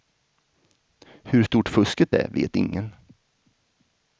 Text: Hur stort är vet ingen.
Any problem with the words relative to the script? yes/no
yes